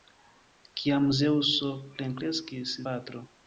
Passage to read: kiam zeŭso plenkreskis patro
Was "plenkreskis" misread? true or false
false